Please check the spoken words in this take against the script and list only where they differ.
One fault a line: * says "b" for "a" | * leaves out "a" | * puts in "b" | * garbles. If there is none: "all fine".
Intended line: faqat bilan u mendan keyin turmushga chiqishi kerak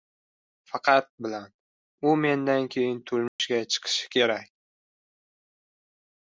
all fine